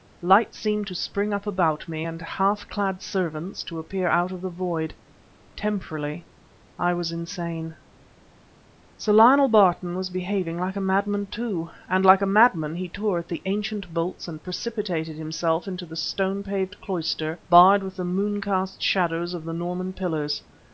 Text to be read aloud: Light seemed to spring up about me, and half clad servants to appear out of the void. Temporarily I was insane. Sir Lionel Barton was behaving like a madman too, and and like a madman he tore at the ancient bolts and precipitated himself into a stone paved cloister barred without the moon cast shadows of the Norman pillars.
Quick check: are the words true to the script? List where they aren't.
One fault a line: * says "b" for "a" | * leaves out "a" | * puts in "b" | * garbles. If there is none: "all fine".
* leaves out "and"
* says "the" for "a"
* says "with" for "without"